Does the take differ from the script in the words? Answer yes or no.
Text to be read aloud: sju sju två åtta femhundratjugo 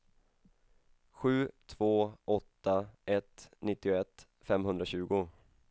yes